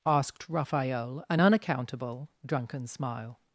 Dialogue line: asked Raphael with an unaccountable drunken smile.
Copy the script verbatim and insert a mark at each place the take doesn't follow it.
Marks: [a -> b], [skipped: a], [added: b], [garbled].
asked Raphael [skipped: with] an unaccountable drunken smile.